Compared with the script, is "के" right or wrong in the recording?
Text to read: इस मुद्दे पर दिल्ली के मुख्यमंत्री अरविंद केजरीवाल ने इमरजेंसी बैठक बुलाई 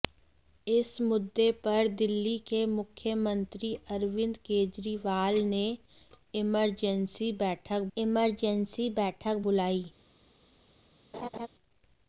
right